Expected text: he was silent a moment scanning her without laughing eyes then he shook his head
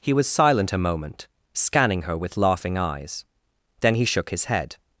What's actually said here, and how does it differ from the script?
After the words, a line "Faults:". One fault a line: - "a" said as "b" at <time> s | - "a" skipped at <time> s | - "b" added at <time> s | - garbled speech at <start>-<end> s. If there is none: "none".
he was silent a moment scanning her with laughing eyes then he shook his head
Faults:
- "without" said as "with" at 2.2 s